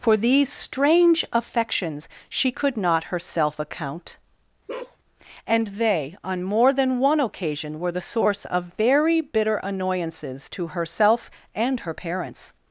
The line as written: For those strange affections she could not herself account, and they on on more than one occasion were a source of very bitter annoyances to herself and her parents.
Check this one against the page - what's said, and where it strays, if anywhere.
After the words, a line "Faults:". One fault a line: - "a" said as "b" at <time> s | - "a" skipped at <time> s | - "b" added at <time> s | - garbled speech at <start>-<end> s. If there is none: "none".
For these strange affections she could not herself account, and they on more than one occasion were the source of very bitter annoyances to herself and her parents.
Faults:
- "those" said as "these" at 0.2 s
- "on" skipped at 6.4 s
- "a" said as "the" at 7.9 s